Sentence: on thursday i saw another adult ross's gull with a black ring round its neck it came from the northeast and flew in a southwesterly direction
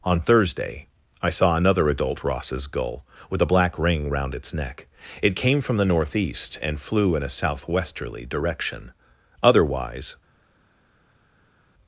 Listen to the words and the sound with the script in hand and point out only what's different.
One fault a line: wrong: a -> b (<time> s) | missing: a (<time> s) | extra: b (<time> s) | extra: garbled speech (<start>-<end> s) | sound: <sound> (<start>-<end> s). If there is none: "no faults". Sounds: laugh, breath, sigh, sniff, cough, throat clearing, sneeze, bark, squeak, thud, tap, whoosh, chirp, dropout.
extra: otherwise (9.4 s)